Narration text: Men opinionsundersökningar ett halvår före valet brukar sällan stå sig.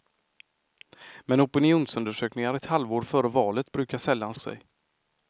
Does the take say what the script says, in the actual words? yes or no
no